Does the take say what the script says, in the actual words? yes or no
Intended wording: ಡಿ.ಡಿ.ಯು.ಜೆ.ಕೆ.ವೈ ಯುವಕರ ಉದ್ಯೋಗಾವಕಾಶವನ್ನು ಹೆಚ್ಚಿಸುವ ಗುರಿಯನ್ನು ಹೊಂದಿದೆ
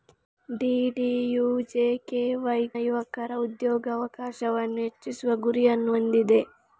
yes